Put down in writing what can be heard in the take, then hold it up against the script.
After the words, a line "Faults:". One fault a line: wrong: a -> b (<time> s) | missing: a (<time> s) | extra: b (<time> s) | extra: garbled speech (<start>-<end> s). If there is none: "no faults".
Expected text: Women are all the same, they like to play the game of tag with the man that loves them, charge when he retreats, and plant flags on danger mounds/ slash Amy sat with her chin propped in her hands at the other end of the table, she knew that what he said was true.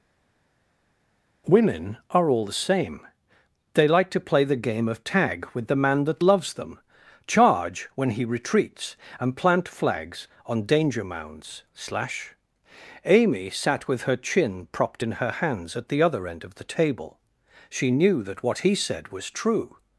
Women are all the same, they like to play the game of tag with the man that loves them, charge when he retreats, and plant flags on danger mounds/ slash Amy sat with her chin propped in her hands at the other end of the table, she knew that what he said was true.
Faults:
no faults